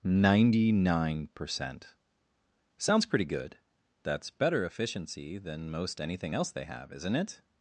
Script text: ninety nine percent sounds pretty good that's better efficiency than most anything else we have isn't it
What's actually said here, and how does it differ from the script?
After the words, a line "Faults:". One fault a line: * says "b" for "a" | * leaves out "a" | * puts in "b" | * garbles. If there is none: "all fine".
ninety nine percent sounds pretty good that's better efficiency than most anything else they have isn't it
Faults:
* says "they" for "we"